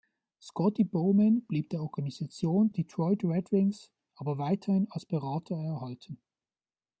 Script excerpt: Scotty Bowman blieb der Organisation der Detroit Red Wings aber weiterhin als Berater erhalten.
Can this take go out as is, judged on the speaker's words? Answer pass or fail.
fail